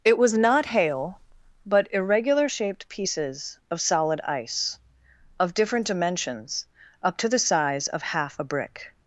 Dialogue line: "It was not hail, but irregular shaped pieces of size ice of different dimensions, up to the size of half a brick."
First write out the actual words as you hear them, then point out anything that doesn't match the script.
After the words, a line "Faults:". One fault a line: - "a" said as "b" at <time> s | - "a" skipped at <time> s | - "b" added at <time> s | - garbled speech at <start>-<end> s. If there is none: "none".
"It was not hail, but irregular shaped pieces of solid ice of different dimensions, up to the size of half a brick."
Faults:
- "size" said as "solid" at 3.8 s